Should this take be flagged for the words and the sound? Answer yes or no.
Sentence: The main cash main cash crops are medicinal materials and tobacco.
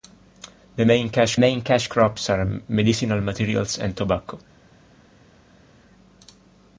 no